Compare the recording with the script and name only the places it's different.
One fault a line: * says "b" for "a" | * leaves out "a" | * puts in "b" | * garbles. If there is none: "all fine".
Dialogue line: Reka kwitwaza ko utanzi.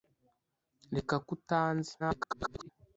* leaves out "kwitwaza"
* garbles